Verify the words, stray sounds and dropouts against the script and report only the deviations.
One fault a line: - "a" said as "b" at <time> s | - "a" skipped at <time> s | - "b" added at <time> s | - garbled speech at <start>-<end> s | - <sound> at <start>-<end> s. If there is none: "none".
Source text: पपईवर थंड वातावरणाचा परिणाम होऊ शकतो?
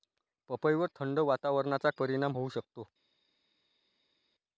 none